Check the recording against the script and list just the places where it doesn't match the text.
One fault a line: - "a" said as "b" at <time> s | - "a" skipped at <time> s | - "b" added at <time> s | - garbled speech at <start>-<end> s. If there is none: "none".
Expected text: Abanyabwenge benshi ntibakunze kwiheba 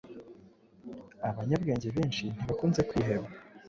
none